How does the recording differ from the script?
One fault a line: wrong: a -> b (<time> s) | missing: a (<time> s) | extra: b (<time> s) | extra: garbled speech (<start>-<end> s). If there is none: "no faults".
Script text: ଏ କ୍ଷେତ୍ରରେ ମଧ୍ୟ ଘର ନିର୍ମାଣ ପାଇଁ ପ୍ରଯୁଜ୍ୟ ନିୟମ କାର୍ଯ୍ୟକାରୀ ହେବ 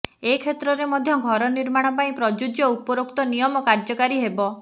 extra: ଉପରୋକ୍ତ (2.7 s)